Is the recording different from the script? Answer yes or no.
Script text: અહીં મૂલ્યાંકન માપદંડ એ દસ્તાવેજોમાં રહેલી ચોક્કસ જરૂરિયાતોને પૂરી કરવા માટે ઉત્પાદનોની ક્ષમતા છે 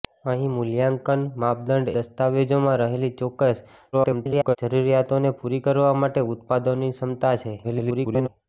yes